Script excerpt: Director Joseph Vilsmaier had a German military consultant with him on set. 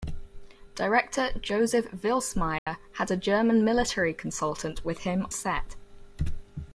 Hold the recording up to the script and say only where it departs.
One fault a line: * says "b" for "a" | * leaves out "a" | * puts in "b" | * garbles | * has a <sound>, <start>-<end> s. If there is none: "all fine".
* has a dropout, 2.6-2.7 s
* leaves out "on"